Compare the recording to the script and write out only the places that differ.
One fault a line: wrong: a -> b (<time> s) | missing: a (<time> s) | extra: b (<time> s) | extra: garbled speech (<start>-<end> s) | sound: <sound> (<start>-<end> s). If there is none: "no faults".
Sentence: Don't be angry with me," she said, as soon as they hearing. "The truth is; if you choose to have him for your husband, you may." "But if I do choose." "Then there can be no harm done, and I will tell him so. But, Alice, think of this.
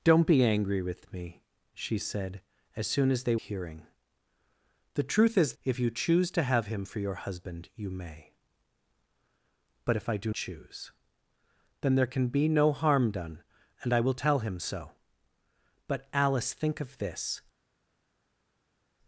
no faults